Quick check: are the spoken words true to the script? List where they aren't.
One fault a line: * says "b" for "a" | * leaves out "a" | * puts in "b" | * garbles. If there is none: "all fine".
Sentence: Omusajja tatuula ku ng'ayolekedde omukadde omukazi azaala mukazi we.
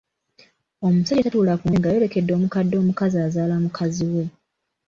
all fine